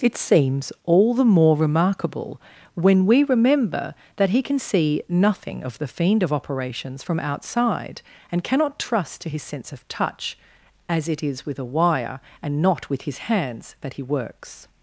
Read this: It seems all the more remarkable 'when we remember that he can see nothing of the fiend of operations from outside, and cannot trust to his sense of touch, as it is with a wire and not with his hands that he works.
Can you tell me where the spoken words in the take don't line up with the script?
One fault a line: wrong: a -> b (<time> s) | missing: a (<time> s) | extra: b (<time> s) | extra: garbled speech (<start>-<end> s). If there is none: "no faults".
no faults